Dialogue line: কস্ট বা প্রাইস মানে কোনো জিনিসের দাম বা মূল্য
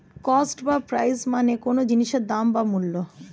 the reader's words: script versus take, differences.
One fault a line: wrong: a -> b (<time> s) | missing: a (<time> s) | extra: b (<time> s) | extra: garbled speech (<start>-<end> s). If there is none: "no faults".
no faults